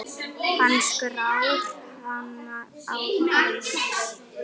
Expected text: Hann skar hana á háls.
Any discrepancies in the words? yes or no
no